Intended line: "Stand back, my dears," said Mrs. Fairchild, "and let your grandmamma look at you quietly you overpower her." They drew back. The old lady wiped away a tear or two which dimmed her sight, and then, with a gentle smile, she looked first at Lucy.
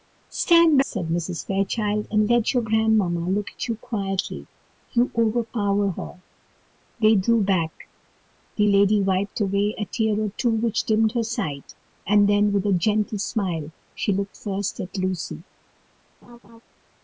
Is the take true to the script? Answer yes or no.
no